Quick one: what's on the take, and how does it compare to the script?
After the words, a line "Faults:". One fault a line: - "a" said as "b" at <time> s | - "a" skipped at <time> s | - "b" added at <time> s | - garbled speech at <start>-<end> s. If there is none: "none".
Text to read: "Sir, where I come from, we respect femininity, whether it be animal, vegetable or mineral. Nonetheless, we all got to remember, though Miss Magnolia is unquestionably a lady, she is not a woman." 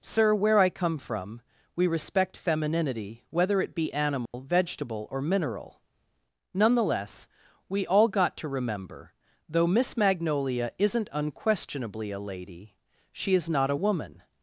"Sir, where I come from, we respect femininity, whether it be animal, vegetable or mineral. Nonetheless, we all got to remember, though Miss Magnolia isn't unquestionably a lady, she is not a woman."
Faults:
- "is" said as "isn't" at 10.8 s